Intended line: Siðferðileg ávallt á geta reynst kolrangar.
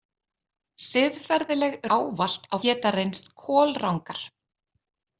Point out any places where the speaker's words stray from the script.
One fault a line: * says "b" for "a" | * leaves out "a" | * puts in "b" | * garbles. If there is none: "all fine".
all fine